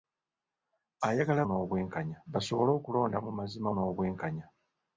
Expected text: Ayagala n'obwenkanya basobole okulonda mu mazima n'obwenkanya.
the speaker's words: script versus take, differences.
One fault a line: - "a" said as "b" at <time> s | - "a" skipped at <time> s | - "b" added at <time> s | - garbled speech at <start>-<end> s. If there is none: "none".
none